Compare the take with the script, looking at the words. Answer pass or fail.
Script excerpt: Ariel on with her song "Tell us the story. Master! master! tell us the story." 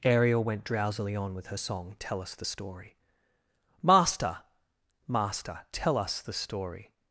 fail